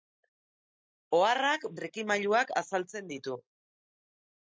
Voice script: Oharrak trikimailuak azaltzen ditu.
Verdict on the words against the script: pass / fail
pass